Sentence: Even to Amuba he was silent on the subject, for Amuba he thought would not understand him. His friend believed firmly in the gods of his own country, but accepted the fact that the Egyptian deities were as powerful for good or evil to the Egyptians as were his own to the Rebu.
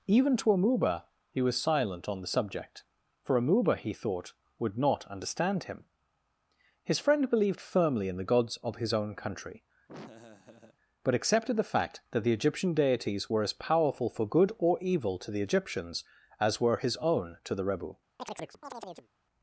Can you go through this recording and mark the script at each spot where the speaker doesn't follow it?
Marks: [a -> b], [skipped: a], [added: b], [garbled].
Even to Amuba he was silent on the subject, for Amuba he thought would not understand him. His friend believed firmly in the gods of his own country, but accepted the fact that the Egyptian deities were as powerful for good or evil to the Egyptians as were his own to the Rebu.